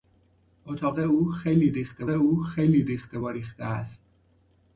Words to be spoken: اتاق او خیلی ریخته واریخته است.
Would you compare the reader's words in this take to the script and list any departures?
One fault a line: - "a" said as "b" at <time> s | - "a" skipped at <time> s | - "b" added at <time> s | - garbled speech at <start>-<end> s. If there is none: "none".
- "او خیلی ریخته" added at 2.1 s